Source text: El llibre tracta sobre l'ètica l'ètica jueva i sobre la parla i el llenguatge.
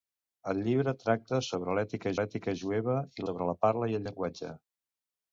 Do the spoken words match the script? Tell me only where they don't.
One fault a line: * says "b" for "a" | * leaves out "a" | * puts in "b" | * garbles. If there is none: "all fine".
all fine